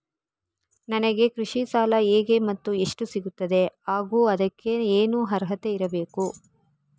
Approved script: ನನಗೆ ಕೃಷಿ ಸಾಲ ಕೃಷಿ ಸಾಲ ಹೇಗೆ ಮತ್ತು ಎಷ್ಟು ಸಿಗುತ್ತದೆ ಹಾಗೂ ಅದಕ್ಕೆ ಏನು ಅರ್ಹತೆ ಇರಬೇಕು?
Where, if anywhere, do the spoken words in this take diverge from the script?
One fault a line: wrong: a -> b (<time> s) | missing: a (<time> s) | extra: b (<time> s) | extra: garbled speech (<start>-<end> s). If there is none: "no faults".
missing: ಕೃಷಿ ಸಾಲ (1.9 s)